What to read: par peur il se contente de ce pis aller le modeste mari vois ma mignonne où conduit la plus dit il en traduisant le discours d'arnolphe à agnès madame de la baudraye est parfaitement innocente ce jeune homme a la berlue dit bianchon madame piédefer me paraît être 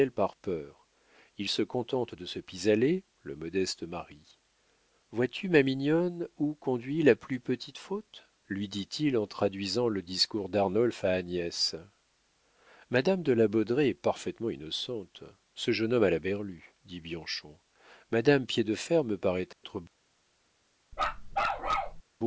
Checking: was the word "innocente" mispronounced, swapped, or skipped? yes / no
no